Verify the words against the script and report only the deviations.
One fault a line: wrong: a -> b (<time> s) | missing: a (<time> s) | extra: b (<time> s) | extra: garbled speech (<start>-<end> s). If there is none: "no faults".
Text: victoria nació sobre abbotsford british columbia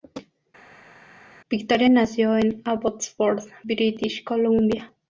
wrong: sobre -> en (2.4 s)